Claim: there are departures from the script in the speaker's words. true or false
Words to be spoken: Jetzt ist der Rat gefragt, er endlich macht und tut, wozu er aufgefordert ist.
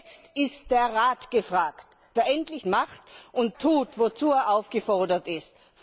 false